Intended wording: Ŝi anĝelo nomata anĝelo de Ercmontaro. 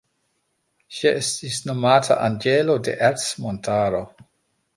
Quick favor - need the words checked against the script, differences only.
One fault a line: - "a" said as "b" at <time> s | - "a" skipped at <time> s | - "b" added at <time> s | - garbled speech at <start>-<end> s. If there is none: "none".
- "anĝelo" said as "estis" at 1.2 s